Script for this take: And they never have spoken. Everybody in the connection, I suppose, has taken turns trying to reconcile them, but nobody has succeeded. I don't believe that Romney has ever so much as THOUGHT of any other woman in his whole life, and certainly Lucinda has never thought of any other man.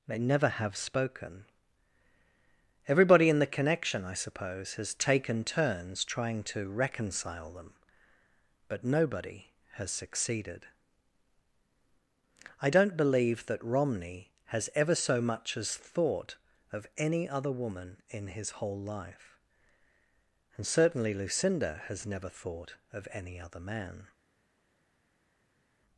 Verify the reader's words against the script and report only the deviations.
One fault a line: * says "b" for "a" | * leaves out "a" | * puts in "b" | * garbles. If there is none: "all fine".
* leaves out "And"